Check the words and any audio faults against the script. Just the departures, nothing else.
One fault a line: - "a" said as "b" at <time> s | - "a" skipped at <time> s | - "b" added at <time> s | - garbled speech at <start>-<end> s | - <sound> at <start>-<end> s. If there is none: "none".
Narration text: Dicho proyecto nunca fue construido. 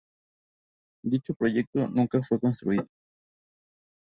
none